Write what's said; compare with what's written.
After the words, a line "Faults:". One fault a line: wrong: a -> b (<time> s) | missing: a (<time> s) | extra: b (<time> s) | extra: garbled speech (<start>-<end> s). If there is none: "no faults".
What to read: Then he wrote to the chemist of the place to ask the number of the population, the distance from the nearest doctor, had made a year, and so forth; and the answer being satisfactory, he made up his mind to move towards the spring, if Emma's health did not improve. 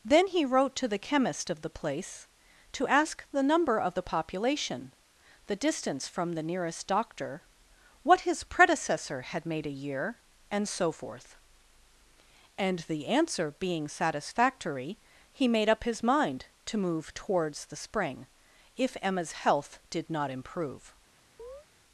Then he wrote to the chemist of the place to ask the number of the population, the distance from the nearest doctor, what his predecessor had made a year, and so forth; and the answer being satisfactory, he made up his mind to move towards the spring, if Emma's health did not improve.
Faults:
extra: what his predecessor (8.0 s)